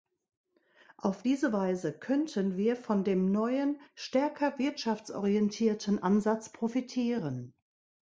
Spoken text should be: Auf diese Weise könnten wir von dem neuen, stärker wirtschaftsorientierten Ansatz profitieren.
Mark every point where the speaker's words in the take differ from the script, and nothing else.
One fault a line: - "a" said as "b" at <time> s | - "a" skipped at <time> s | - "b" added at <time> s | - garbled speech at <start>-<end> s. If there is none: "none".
none